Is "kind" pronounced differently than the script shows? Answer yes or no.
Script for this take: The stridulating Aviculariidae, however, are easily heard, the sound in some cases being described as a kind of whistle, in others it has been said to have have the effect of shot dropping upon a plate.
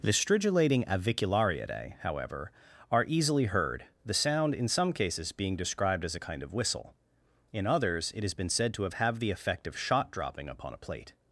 no